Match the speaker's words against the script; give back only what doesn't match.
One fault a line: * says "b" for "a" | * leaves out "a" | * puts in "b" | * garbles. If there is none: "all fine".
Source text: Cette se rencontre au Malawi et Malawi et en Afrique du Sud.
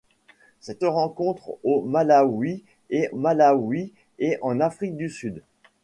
all fine